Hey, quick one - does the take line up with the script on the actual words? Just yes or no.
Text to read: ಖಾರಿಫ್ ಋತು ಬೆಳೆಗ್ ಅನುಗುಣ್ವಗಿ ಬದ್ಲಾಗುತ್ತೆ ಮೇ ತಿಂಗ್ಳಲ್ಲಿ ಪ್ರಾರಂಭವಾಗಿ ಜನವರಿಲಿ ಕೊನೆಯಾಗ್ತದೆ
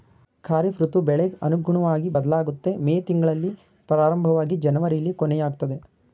yes